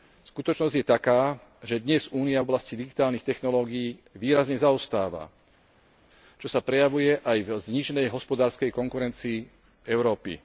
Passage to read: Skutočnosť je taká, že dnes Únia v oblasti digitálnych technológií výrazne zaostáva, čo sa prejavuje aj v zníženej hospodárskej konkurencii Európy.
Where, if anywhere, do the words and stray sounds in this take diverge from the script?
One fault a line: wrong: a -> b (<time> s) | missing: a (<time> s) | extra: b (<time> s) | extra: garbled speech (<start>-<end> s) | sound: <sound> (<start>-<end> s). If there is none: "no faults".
no faults